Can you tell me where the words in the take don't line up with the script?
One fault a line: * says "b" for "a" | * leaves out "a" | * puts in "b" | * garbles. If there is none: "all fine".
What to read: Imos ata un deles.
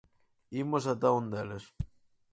all fine